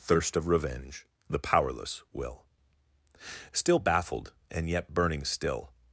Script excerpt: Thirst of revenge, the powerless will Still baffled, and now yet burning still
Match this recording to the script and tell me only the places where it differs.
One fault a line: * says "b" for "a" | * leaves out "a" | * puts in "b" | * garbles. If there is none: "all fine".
* leaves out "now"